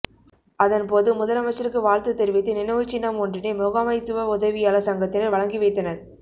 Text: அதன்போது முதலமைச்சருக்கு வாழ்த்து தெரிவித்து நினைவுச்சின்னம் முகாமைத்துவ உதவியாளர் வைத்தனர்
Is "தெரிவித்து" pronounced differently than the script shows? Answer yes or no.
no